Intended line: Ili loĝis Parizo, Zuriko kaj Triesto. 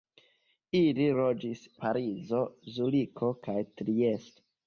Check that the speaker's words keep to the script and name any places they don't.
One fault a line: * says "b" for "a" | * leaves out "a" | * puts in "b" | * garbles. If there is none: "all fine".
all fine